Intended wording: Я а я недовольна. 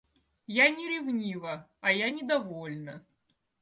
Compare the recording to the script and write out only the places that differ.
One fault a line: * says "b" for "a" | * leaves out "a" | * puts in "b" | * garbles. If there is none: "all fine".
* puts in "не ревнива"